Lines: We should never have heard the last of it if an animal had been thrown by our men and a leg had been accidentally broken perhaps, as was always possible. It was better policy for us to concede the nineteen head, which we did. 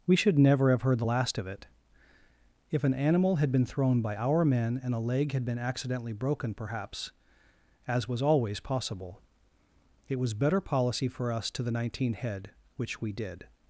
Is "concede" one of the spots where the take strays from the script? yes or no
yes